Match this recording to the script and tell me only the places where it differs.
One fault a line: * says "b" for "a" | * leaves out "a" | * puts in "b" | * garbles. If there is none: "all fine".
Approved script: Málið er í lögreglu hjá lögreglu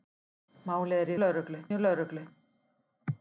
all fine